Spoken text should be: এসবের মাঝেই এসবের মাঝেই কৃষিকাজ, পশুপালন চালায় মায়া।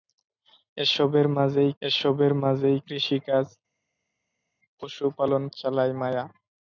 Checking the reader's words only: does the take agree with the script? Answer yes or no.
yes